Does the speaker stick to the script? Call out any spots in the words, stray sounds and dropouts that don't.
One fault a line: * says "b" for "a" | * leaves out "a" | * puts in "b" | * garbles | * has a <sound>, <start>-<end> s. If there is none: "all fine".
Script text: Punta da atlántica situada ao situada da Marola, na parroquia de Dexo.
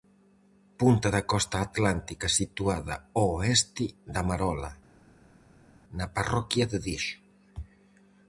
* puts in "costa"
* says "oeste" for "situada"